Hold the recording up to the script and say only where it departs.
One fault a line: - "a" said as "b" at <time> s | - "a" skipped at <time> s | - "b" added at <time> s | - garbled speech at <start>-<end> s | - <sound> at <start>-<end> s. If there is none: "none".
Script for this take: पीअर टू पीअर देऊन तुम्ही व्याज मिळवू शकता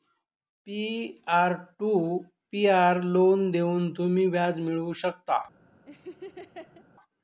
- "लोन" added at 3.0 s
- laugh at 5.9-6.8 s